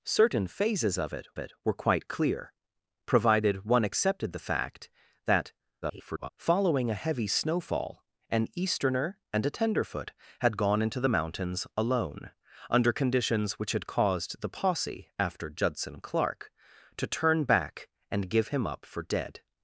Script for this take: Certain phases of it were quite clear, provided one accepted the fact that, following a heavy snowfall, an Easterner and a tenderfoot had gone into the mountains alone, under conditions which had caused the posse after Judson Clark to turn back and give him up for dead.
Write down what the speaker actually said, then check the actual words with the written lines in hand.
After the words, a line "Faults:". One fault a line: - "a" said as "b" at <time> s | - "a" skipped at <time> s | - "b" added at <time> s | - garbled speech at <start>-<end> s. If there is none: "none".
Certain phases of it it were quite clear, provided one accepted the fact that, [garbled] following a heavy snowfall, an Easterner and a tenderfoot had gone into the mountains alone, under conditions which had caused the posse after Judson Clark to turn back and give him up for dead.
Faults:
- "it" added at 1.4 s
- garbled speech at 5.8-6.3 s